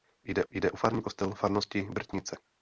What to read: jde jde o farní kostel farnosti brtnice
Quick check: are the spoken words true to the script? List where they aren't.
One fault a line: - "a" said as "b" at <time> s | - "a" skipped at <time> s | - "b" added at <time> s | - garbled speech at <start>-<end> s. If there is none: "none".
none